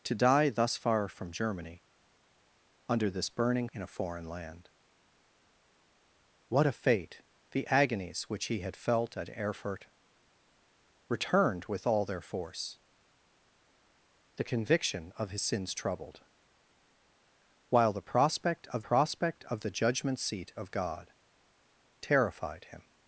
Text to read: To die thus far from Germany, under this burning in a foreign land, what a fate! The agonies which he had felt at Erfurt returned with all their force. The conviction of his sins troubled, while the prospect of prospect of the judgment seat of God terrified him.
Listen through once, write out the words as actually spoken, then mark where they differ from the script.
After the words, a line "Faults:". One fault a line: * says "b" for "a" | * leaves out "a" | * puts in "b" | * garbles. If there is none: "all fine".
To die thus far from Germany, under this burning in a foreign land, what a fate! The agonies which he had felt at Erfurt returned with all their force. The conviction of his sins troubled, while the prospect of prospect of the judgment seat of God terrified him.
Faults:
all fine